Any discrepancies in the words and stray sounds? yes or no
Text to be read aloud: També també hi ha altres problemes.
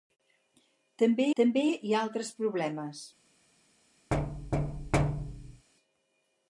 yes